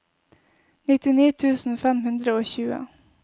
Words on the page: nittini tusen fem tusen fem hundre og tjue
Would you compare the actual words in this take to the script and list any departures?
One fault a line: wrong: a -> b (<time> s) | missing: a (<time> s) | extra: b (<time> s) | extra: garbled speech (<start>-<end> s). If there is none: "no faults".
missing: tusen fem (2.0 s)